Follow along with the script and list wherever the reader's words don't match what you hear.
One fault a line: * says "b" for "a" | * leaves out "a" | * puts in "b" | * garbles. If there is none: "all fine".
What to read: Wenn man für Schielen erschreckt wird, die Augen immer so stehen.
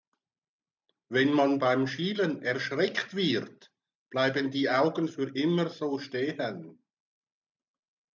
* says "beim" for "für"
* puts in "bleiben"
* puts in "für"